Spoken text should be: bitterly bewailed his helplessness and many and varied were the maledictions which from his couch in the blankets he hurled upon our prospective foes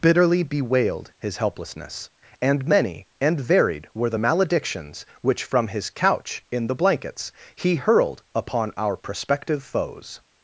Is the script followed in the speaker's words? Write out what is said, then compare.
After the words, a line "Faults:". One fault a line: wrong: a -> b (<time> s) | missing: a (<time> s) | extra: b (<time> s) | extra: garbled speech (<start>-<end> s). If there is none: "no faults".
bitterly bewailed his helplessness and many and varied were the maledictions which from his couch in the blankets he hurled upon our prospective foes
Faults:
no faults